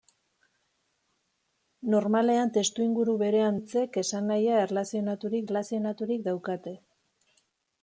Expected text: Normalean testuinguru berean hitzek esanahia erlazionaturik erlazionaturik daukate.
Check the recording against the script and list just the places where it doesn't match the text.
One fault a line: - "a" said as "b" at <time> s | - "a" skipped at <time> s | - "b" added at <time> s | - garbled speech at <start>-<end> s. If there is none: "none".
none